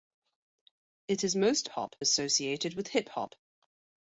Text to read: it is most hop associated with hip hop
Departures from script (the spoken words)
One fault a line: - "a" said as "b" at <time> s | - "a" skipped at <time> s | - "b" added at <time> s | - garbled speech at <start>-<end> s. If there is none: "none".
none